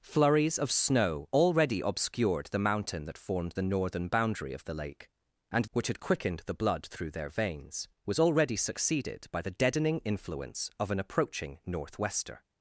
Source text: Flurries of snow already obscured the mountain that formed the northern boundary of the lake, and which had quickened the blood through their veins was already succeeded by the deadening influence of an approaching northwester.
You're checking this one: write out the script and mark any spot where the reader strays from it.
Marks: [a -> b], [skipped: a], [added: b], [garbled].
Flurries of snow already obscured the mountain that formed the northern boundary of the lake, and which had quickened the blood through their veins was already succeeded by the deadening influence of an approaching northwester.